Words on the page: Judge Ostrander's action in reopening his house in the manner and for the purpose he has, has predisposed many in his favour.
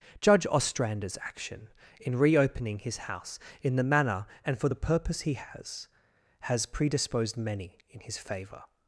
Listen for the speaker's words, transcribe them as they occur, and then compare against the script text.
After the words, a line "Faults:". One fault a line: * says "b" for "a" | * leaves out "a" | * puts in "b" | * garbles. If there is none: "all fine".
Judge Ostrander's action in reopening his house in the manner and for the purpose he has, has predisposed many in his favour.
Faults:
all fine